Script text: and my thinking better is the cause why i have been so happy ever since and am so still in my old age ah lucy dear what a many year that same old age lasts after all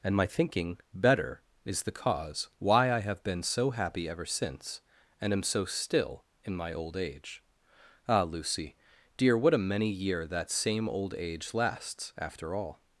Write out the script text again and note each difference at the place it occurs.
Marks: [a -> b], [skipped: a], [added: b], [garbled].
and my thinking better is the cause why i have been so happy ever since and am so still in my old age ah lucy dear what a many year that same old age lasts after all